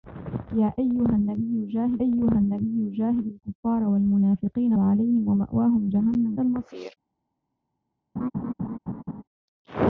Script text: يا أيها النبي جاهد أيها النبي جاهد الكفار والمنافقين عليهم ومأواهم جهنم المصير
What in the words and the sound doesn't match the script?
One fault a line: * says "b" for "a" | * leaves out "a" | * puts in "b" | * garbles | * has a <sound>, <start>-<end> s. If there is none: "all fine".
* has a laugh, 8.2-9.2 s